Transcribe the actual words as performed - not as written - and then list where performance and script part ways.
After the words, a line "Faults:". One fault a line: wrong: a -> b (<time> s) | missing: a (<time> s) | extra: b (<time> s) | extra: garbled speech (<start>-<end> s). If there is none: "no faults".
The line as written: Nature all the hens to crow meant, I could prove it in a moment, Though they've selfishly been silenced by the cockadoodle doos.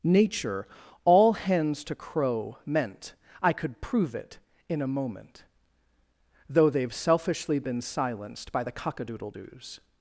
Nature all hens to crow meant, I could prove it in a moment, Though they've selfishly been silenced by the cockadoodle doos.
Faults:
missing: the (1.3 s)